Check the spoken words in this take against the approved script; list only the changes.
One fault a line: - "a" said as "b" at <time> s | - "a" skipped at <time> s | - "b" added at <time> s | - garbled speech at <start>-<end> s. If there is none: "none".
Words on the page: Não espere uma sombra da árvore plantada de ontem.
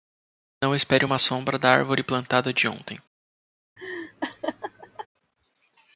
none